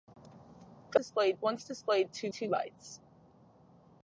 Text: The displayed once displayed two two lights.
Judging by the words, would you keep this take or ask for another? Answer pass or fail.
pass